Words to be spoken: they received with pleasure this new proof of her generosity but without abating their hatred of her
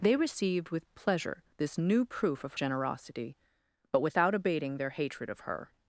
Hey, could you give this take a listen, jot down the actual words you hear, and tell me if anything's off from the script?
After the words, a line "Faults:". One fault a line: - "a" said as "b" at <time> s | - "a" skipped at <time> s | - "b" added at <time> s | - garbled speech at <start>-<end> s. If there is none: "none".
they received with pleasure this new proof of generosity but without abating their hatred of her
Faults:
- "her" skipped at 2.5 s